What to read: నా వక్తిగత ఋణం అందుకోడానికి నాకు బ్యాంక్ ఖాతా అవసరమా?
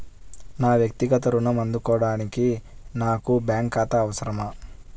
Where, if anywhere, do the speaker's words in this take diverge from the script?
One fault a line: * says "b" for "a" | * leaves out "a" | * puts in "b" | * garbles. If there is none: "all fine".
all fine